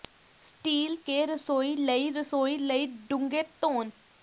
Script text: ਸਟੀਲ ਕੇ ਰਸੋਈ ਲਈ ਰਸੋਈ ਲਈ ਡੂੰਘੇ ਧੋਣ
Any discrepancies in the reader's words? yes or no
no